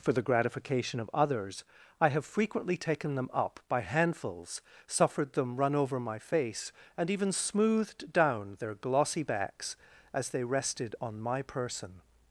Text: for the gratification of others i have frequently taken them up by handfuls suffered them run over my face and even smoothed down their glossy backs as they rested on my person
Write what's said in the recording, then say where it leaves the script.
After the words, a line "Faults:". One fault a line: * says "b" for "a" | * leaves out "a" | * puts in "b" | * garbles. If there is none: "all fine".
for the gratification of others i have frequently taken them up by handfuls suffered them run over my face and even smoothed down their glossy backs as they rested on my person
Faults:
all fine